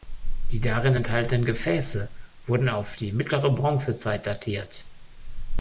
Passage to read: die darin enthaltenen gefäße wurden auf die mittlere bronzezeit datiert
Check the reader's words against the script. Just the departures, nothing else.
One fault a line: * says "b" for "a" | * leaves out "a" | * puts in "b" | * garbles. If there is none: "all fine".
all fine